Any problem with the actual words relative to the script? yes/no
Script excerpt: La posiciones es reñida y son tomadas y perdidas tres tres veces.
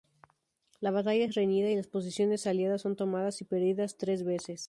yes